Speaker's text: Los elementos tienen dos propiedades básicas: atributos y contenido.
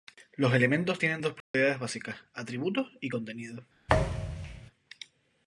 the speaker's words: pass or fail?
pass